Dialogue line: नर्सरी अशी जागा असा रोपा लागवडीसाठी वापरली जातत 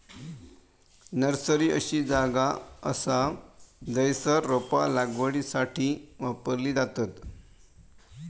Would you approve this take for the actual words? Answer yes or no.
no